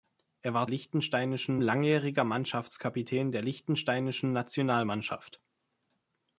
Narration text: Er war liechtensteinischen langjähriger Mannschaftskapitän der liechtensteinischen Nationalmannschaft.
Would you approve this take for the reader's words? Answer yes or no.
yes